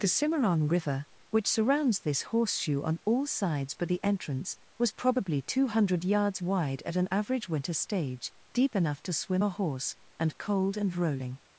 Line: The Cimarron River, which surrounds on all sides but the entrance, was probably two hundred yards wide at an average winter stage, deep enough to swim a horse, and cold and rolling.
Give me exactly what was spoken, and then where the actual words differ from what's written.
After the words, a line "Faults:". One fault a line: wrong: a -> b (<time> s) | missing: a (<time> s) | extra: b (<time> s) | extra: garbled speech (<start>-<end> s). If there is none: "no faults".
The Cimarron River, which surrounds this horseshoe on all sides but the entrance, was probably two hundred yards wide at an average winter stage, deep enough to swim a horse, and cold and rolling.
Faults:
extra: this horseshoe (2.0 s)